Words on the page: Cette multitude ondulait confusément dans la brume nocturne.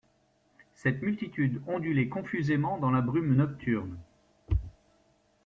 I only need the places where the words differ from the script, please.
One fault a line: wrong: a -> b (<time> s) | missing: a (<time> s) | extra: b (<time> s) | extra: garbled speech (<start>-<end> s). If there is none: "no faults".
no faults